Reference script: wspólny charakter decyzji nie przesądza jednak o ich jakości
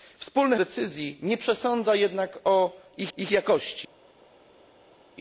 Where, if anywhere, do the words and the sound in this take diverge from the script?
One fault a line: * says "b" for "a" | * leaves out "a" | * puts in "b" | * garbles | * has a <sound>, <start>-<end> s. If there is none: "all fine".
* leaves out "charakter"
* puts in "ich"